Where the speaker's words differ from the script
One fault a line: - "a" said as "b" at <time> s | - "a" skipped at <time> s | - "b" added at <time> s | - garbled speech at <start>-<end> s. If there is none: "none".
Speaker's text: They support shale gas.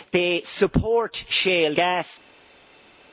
none